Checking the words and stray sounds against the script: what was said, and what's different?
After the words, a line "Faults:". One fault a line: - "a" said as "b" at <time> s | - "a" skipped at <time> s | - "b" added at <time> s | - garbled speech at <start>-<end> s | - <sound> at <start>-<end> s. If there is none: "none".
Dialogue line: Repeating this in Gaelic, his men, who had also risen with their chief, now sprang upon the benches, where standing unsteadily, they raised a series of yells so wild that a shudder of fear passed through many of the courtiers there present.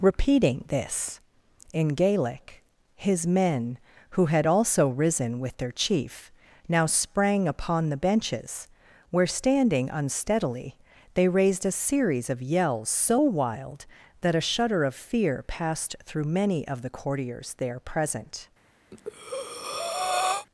Repeating this in Gaelic, his men, who had also risen with their chief, now sprang upon the benches, where standing unsteadily, they raised a series of yells so wild that a shudder of fear passed through many of the courtiers there present.
Faults:
- breath at 18.9-20.5 s